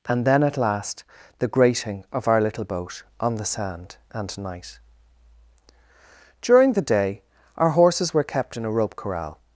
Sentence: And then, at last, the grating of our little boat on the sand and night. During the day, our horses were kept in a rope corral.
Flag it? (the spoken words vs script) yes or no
no